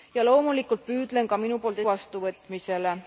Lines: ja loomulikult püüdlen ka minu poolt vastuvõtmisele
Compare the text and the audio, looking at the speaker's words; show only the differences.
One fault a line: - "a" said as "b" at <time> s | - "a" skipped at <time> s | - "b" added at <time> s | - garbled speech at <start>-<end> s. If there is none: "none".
none